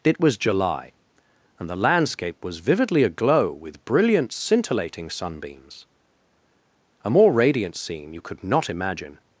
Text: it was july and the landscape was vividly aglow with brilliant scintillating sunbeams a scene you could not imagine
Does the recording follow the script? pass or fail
fail